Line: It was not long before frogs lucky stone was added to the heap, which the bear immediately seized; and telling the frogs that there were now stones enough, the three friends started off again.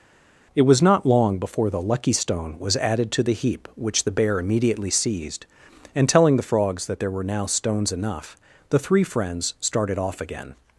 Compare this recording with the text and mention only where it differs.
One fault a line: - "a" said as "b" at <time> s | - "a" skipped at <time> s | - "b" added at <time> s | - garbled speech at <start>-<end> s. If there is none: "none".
- "frogs" said as "the" at 1.7 s